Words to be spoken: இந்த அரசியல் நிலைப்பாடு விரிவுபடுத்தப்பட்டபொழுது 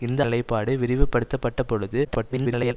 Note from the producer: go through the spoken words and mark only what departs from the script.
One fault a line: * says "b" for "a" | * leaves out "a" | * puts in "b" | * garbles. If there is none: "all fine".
* leaves out "அரசியல்"
* garbles